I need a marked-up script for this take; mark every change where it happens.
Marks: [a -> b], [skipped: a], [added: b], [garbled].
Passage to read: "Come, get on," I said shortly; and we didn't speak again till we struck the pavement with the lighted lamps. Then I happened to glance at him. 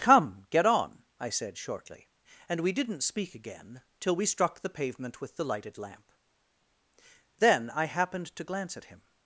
"Come, get on," I said shortly; and we didn't speak again till we struck the pavement with the lighted [lamps. -> lamp] Then I happened to glance at him.